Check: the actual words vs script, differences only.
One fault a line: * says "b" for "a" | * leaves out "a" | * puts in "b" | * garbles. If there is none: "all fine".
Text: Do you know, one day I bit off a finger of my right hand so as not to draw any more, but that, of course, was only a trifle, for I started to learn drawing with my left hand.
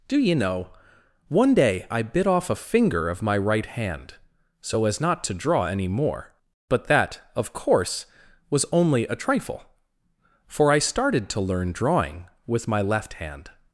all fine